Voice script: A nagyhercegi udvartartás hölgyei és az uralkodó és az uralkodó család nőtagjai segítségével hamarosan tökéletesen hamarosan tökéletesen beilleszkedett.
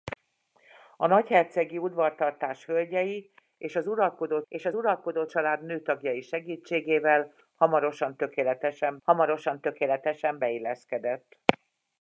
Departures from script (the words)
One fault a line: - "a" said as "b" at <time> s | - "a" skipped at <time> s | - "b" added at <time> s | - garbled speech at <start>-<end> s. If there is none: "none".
none